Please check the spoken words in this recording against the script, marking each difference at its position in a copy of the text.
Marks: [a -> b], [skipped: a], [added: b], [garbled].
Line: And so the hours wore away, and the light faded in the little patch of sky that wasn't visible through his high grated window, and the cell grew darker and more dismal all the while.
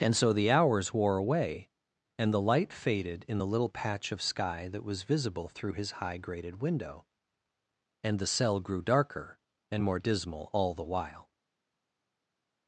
And so the hours wore away, and the light faded in the little patch of sky that [wasn't -> was] visible through his high grated window, and the cell grew darker and more dismal all the while.